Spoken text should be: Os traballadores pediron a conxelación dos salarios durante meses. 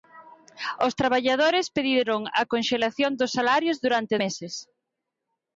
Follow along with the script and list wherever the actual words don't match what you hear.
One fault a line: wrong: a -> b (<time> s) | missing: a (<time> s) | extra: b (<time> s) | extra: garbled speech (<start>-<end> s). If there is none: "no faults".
no faults